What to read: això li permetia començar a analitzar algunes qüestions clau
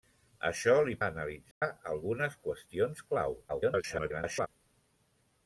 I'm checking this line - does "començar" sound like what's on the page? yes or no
no